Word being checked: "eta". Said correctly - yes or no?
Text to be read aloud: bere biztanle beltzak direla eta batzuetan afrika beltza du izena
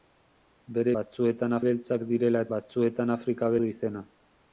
no